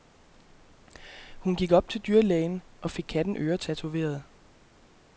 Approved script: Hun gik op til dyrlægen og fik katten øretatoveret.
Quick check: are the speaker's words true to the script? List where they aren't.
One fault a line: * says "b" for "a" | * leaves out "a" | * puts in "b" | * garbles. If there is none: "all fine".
all fine